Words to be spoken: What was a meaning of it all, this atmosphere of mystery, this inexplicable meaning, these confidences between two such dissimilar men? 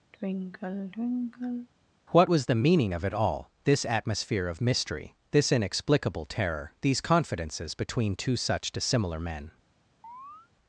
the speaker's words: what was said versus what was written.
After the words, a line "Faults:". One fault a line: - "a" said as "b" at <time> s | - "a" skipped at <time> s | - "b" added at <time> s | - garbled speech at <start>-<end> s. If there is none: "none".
What was the meaning of it all, this atmosphere of mystery, this inexplicable terror, these confidences between two such dissimilar men?
Faults:
- "a" said as "the" at 2.4 s
- "meaning" said as "terror" at 6.3 s